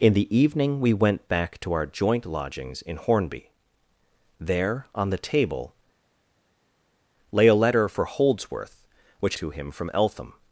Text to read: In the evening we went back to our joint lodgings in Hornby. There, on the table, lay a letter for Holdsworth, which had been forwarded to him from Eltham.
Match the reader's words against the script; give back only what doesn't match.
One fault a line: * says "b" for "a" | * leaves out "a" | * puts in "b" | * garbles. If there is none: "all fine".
* leaves out "had been forwarded"